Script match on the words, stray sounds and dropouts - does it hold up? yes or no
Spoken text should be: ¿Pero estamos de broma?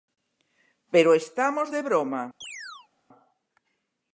no